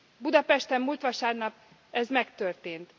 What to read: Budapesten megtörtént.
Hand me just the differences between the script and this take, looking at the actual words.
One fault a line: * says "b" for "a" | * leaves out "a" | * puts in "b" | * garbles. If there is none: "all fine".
* puts in "múlt vasárnap ez"